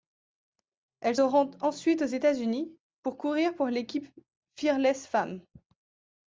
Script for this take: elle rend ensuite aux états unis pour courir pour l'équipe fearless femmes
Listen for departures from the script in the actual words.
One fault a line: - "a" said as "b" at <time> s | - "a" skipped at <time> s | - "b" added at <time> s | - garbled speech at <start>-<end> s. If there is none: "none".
none